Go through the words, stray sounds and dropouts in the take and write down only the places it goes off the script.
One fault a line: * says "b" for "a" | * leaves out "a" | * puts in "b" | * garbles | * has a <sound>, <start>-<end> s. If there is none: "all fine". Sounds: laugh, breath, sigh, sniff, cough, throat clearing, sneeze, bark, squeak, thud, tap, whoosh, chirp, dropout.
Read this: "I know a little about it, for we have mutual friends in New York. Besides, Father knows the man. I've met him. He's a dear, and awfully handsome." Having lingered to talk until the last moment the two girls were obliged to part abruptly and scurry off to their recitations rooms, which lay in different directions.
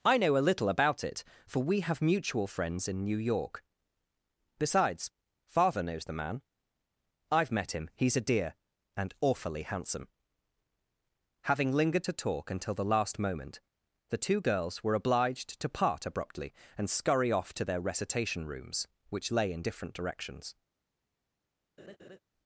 * says "recitation" for "recitations"
* has a laugh, 21.8-22.2 s